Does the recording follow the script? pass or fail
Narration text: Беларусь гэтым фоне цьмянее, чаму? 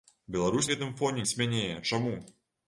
pass